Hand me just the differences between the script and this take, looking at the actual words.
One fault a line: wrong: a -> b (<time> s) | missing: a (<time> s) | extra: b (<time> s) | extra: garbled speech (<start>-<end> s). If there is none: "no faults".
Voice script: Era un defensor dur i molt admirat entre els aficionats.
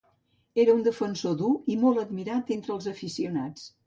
no faults